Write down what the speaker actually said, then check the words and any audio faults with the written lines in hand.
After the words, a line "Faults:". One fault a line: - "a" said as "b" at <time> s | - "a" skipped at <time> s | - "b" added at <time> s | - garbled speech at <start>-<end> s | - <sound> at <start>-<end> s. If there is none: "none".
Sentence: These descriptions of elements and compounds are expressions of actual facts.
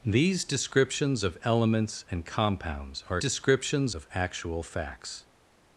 These descriptions of elements and compounds are descriptions of actual facts.
Faults:
- "expressions" said as "descriptions" at 3.2 s